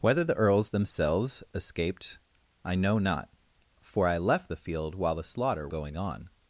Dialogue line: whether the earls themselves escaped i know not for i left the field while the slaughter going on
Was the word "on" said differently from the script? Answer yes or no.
no